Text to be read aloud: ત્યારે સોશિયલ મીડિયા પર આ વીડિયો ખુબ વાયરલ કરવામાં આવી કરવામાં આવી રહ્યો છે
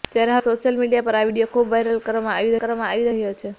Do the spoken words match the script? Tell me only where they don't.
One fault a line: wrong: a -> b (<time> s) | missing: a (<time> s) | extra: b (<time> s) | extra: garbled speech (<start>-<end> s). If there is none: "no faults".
no faults